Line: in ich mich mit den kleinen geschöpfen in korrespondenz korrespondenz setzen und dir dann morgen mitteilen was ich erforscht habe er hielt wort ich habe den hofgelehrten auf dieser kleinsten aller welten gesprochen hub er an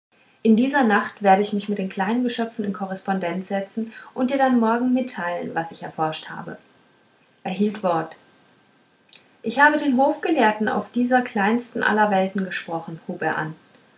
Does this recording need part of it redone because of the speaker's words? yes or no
yes